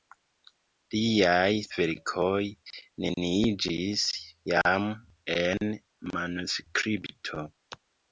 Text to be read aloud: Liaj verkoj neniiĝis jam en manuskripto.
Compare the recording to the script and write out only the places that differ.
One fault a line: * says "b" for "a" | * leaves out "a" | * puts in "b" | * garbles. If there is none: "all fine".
all fine